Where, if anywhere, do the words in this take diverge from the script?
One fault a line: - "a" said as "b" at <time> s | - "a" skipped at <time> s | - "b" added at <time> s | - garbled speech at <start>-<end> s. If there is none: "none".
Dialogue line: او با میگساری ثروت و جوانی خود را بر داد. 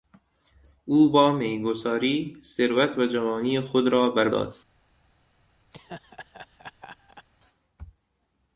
none